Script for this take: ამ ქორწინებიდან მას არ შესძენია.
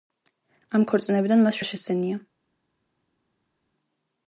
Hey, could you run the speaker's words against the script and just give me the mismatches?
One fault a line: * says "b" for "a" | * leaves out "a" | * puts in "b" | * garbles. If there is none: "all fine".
all fine